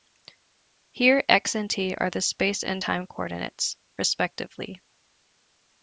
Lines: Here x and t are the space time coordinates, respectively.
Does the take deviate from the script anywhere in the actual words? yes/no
yes